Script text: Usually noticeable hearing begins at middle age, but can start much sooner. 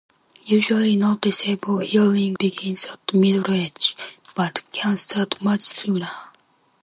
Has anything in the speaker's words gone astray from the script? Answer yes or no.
no